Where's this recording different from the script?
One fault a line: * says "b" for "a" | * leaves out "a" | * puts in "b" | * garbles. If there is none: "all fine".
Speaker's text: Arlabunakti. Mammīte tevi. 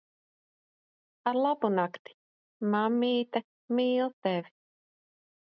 * puts in "mīl"